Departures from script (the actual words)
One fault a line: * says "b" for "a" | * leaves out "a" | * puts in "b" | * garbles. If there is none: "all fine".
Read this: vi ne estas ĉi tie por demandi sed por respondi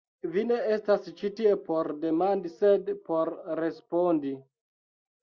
all fine